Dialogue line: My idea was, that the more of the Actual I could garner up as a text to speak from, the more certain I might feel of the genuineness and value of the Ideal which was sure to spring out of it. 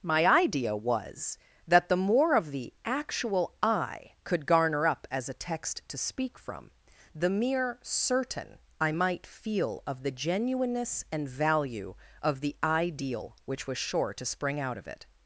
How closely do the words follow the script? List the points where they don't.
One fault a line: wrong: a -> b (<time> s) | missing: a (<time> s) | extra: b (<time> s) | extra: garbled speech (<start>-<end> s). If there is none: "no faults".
wrong: more -> mere (7.3 s)